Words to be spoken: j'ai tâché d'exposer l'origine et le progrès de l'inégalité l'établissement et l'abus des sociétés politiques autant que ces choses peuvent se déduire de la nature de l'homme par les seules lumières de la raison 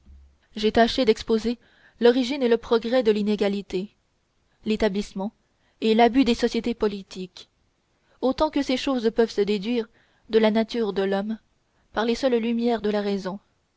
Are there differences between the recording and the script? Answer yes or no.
no